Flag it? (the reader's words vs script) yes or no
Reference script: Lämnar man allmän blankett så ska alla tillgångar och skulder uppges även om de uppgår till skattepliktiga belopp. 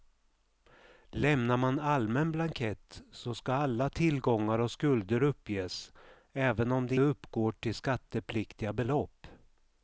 no